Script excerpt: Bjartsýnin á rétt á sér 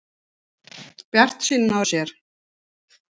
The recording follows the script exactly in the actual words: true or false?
false